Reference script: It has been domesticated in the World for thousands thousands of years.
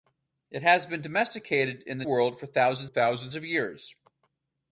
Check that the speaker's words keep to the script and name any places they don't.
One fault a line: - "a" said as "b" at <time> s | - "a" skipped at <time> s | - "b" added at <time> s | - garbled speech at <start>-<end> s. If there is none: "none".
none